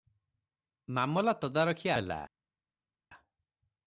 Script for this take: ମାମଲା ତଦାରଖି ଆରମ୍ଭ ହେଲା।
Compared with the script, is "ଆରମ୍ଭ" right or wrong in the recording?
wrong